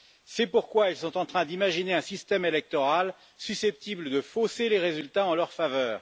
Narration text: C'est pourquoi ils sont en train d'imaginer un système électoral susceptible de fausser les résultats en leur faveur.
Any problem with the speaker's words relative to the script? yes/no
no